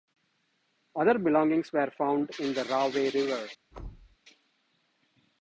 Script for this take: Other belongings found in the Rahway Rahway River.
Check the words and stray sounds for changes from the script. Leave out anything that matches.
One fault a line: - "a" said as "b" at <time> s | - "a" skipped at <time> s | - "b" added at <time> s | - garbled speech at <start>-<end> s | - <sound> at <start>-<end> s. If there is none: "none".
- "were" added at 1.7 s
- "Rahway" skipped at 3.1 s
- thud at 3.7-4.2 s